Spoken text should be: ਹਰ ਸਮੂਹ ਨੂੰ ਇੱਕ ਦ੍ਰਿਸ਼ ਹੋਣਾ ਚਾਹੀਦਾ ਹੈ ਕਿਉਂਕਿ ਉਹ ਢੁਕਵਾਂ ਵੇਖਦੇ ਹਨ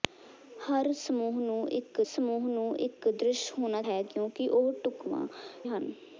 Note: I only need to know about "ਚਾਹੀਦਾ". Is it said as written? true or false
false